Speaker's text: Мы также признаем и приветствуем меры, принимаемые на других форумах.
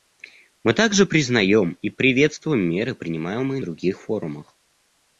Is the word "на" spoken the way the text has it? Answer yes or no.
no